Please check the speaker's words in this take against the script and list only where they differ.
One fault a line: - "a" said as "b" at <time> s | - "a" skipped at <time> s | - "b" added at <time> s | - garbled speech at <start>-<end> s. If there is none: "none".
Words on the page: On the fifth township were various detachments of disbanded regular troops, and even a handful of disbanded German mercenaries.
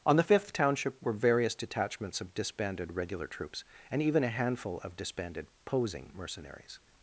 - "German" said as "Posing" at 5.6 s